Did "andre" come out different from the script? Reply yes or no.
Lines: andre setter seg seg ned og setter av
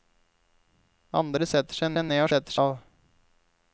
no